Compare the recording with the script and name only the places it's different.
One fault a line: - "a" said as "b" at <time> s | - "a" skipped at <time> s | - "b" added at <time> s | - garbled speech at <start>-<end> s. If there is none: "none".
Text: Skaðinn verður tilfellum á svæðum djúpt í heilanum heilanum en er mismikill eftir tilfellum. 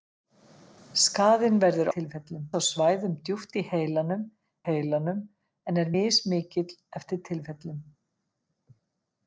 none